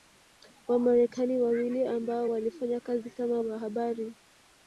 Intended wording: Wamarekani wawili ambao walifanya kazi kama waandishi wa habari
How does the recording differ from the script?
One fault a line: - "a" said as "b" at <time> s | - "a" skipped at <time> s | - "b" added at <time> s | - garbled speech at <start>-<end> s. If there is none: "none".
- "waandishi" skipped at 3.4 s